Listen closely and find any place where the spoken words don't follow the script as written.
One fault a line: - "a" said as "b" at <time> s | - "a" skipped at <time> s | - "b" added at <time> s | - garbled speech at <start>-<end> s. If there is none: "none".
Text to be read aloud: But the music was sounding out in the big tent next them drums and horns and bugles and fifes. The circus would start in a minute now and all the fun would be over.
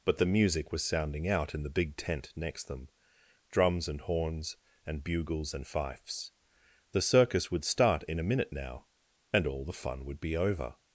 none